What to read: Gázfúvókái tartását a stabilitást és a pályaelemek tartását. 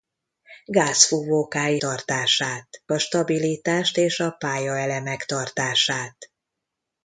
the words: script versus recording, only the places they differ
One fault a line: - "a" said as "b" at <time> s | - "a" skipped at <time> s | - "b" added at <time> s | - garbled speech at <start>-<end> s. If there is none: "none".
none